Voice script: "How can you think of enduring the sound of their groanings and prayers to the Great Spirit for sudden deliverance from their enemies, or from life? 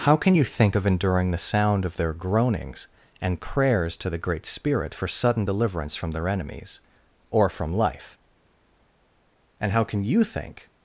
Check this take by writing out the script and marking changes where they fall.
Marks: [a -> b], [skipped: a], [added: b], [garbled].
"How can you think of enduring the sound of their groanings and prayers to the Great Spirit for sudden deliverance from their enemies, or from life? [added: And how can you think]